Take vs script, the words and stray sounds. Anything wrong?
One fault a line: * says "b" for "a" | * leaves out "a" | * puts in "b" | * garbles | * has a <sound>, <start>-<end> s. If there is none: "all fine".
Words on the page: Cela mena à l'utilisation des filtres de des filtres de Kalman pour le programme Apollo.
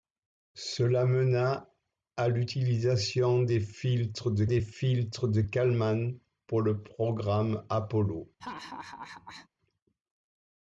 * has a laugh, 8.4-9.5 s